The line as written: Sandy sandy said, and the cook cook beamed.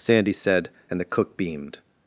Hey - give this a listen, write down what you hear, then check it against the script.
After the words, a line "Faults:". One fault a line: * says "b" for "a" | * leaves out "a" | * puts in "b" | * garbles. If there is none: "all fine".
Sandy said, and the cook beamed.
Faults:
* leaves out "sandy"
* leaves out "cook"